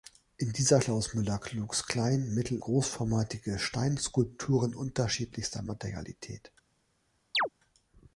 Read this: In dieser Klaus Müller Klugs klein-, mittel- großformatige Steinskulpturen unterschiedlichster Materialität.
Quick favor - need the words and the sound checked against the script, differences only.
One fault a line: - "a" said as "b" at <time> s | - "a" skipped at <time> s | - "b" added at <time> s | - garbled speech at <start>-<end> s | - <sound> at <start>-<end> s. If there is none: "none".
- chirp at 7.3-7.5 s